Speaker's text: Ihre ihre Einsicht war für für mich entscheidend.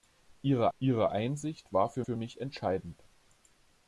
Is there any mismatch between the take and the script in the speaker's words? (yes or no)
no